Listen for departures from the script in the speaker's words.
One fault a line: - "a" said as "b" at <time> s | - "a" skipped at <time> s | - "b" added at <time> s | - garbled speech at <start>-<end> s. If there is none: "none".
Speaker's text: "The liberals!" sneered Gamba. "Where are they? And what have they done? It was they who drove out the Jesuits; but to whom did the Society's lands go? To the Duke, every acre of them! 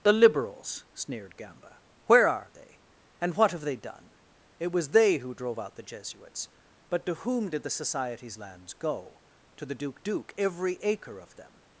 - "Duke" added at 10.0 s